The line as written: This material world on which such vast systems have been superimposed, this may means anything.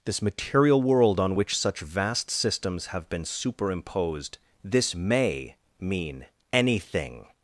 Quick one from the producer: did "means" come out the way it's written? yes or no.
no